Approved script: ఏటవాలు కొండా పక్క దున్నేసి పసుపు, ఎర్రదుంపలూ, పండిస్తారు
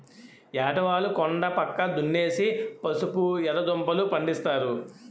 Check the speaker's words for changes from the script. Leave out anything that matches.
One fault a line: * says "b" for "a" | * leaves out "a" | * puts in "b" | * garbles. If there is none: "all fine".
all fine